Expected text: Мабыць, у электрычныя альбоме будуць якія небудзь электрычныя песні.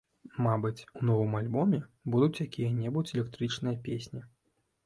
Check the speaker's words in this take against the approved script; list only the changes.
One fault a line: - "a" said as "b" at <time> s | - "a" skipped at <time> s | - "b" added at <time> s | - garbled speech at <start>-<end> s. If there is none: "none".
- "электрычныя" said as "новым" at 1.1 s